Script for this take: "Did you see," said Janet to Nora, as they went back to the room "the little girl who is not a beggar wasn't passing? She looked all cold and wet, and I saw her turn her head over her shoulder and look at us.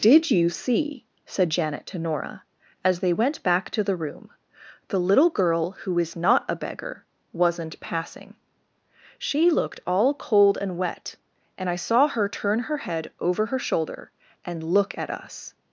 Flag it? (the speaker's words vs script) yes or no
no